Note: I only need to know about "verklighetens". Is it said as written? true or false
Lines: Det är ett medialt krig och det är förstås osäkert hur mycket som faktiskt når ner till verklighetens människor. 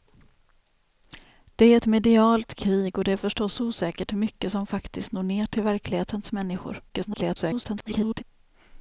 true